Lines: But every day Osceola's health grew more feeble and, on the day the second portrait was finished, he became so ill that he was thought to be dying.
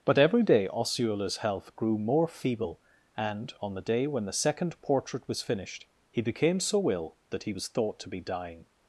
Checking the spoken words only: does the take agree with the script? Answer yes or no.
no